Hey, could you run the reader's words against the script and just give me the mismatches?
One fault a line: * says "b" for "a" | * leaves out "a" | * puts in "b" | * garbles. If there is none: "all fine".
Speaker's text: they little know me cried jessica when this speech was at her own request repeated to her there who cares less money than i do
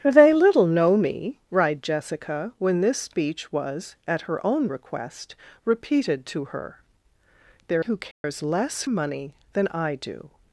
all fine